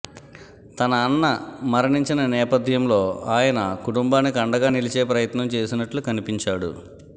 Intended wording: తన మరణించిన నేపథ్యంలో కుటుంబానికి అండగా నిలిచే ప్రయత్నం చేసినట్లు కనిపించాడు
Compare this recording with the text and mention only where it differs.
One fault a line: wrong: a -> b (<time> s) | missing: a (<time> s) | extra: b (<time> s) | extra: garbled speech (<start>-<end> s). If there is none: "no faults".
extra: అన్న (1.0 s)
extra: ఆయన (3.3 s)